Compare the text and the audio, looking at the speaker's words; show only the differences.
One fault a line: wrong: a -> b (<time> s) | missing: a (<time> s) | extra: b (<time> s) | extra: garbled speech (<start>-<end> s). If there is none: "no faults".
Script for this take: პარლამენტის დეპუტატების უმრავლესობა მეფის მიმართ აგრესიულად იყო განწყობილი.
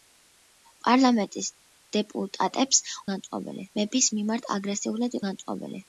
wrong: უმრავლესობა -> განწყობილი (3.1 s)
missing: იყო (5.2 s)